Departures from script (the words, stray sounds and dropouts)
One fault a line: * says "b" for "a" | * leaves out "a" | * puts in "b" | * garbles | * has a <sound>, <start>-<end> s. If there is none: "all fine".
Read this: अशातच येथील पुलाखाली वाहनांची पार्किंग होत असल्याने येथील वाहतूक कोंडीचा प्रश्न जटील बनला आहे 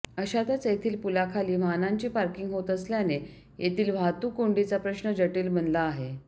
all fine